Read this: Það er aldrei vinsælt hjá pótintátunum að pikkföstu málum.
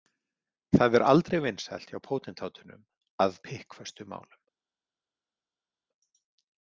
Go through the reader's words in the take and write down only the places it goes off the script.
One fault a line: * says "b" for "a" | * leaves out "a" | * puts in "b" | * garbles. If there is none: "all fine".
all fine